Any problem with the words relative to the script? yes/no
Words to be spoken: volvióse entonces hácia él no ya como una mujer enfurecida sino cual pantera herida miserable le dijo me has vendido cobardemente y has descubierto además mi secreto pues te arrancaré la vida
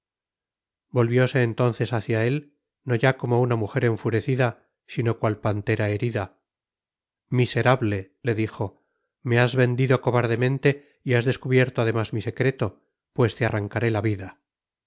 no